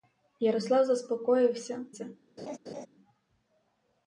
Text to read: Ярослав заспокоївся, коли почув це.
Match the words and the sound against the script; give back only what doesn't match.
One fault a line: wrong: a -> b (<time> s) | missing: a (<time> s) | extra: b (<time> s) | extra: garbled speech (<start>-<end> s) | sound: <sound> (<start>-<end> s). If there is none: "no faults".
missing: коли почув (1.9 s)
sound: laugh (2.4-2.9 s)